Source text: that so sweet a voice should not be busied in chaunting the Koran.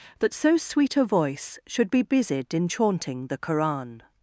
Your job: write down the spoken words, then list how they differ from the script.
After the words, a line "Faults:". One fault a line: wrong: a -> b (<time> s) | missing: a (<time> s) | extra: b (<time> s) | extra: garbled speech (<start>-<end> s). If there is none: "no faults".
that so sweet a voice should be busied in chaunting the Koran.
Faults:
missing: not (1.9 s)